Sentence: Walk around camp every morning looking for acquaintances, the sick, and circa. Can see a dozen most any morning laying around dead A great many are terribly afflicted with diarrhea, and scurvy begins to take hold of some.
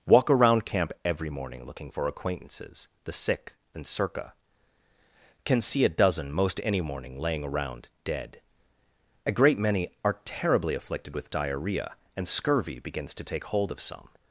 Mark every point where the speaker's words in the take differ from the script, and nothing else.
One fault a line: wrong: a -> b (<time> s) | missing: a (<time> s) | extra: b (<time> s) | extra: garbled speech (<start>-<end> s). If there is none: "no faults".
no faults